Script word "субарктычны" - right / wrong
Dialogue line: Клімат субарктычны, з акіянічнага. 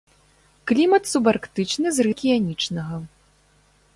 right